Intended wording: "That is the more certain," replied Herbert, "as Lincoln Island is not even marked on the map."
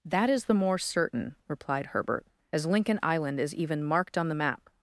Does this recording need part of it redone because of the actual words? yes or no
yes